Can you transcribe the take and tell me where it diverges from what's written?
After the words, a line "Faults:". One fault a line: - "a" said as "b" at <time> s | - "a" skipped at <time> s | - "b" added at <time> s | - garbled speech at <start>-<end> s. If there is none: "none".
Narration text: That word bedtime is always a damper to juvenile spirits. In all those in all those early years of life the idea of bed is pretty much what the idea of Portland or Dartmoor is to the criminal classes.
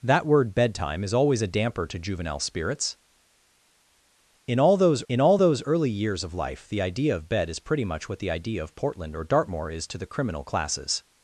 That word bedtime is always a damper to juvenile spirits. In all those in all those early years of life the idea of bed is pretty much what the idea of Portland or Dartmoor is to the criminal classes.
Faults:
none